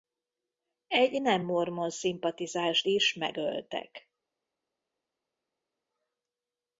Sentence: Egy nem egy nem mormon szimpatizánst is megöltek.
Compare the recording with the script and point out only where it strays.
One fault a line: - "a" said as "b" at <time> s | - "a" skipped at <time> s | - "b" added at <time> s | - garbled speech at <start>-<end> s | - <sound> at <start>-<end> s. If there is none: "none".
- "egy nem" skipped at 1.4 s